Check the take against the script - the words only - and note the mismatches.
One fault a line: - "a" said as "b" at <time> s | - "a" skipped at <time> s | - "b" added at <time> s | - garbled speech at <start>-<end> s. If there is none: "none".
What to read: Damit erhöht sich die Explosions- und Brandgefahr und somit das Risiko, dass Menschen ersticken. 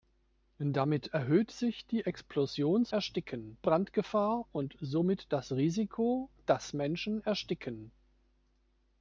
- "und" said as "ersticken" at 2.9 s